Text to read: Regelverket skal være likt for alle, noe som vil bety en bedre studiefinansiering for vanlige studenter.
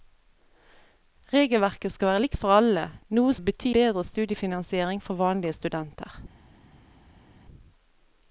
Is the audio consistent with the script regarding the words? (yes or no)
no